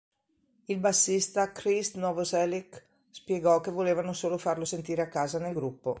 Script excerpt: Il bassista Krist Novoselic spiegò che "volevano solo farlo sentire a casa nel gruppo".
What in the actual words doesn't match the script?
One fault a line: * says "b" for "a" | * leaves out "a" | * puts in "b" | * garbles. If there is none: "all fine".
all fine